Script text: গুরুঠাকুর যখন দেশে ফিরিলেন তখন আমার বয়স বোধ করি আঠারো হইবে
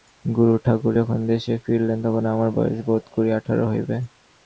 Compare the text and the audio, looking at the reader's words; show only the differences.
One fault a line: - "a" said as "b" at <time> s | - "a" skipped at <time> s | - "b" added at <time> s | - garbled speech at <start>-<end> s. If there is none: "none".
none